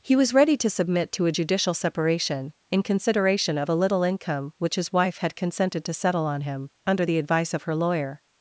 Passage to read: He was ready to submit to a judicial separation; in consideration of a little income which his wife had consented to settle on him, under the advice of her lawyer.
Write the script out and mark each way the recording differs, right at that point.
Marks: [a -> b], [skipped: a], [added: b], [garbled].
He was ready to submit to a judicial separation; in consideration of a little income which his wife had consented to settle on him, under the advice of her lawyer.